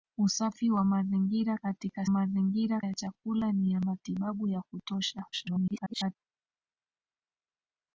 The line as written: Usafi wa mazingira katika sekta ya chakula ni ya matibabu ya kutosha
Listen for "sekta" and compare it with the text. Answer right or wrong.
wrong